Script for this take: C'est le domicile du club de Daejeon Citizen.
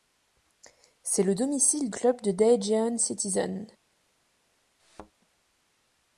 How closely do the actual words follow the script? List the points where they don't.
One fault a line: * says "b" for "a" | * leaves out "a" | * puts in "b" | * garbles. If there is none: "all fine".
* leaves out "du"